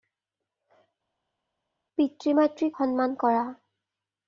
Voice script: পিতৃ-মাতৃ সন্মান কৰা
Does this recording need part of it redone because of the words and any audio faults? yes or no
no